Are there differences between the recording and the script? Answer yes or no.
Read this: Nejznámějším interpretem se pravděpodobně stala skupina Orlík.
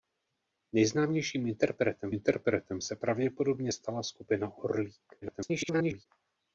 yes